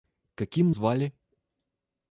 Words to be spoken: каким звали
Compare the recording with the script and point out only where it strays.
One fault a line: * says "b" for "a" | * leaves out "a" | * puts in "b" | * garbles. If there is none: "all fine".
all fine